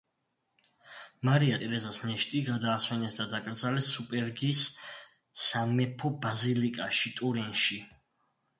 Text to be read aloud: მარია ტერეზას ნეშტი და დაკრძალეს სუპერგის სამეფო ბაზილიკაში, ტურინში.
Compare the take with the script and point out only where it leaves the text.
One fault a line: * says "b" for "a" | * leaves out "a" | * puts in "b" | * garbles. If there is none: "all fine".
* puts in "გადაასვენეს"